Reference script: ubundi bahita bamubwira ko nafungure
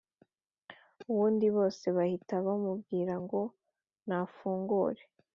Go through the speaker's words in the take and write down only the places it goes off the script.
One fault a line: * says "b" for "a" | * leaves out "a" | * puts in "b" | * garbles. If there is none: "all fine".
* puts in "bose"
* says "ngo" for "ko"